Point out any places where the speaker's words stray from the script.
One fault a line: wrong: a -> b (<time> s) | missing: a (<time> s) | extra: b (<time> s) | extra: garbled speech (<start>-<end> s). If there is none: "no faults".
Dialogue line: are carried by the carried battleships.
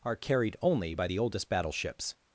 extra: only (0.6 s)
wrong: carried -> oldest (1.2 s)